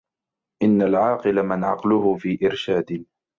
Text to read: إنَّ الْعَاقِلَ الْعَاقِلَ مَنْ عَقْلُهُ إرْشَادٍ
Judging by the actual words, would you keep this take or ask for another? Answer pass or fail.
fail